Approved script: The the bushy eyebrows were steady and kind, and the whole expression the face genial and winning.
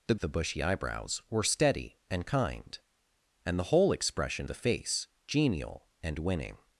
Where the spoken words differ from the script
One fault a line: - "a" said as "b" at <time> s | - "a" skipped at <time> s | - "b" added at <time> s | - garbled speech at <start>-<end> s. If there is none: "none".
none